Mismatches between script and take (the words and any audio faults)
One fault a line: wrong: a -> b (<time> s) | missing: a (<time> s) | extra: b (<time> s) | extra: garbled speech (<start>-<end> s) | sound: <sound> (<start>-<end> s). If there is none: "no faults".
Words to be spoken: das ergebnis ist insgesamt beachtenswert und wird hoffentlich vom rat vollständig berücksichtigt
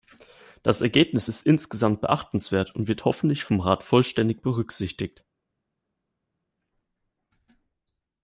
no faults